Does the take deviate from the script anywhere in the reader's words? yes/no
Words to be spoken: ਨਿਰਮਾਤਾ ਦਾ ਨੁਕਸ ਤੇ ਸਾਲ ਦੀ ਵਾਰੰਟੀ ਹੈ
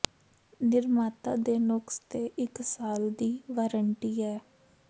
yes